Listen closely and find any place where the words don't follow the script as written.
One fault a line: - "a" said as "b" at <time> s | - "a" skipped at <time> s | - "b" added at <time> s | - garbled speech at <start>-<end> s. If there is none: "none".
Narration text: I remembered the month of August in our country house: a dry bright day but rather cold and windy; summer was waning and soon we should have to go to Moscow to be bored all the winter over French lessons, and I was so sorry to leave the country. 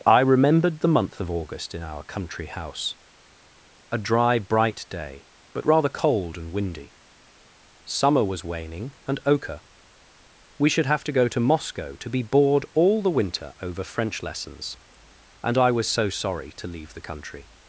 - "soon" said as "ochre" at 9.3 s